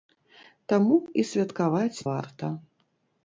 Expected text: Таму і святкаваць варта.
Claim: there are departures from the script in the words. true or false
false